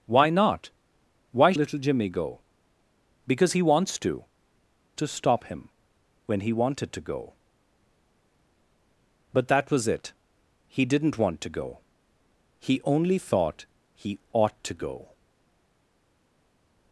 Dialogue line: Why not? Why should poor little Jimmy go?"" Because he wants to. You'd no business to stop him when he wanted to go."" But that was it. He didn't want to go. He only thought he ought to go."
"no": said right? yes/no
no